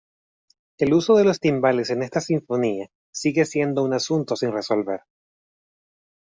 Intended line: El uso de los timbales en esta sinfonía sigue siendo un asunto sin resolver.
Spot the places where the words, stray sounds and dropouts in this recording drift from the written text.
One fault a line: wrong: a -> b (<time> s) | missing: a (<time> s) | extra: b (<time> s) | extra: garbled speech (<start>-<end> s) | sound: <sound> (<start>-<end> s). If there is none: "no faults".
no faults